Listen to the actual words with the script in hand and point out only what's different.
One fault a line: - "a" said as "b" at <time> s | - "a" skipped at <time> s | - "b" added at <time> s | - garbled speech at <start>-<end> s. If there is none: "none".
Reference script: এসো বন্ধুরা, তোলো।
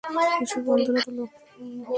none